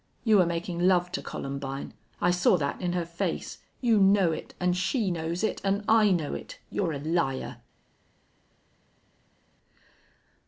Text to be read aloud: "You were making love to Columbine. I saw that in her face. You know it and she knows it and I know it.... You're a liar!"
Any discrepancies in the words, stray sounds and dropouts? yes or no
no